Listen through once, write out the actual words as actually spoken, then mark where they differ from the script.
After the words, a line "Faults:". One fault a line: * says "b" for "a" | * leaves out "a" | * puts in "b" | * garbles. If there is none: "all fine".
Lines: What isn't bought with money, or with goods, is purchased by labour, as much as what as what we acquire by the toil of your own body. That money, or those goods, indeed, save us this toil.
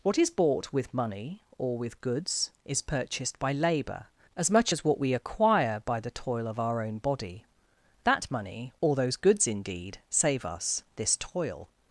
What is bought with money, or with goods, is purchased by labour, as much as what we acquire by the toil of our own body. That money, or those goods, indeed, save us this toil.
Faults:
* says "is" for "isn't"
* leaves out "as what"
* says "our" for "your"